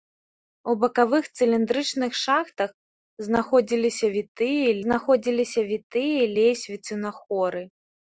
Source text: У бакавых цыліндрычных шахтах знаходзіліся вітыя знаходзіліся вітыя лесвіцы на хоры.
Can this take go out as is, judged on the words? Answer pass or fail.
pass